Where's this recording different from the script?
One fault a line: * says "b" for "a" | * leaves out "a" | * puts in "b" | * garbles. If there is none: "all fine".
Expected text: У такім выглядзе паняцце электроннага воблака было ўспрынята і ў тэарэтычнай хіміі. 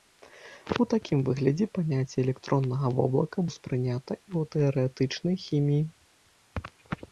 * leaves out "было"